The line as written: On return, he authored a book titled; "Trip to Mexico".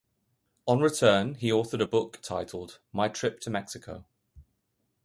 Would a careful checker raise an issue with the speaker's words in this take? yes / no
yes